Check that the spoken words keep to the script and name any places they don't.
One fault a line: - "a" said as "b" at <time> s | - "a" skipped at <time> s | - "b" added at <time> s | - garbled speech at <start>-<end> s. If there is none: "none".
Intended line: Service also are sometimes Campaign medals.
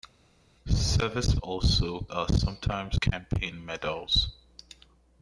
none